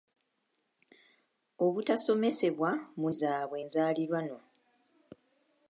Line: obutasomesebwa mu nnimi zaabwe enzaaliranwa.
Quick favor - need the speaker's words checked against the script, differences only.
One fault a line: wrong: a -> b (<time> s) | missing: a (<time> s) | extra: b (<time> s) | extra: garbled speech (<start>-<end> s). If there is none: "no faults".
missing: nnimi (3.1 s)